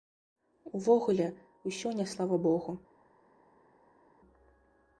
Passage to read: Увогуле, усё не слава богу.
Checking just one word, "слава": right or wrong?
right